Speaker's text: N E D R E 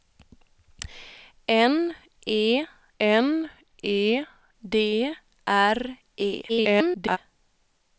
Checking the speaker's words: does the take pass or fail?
fail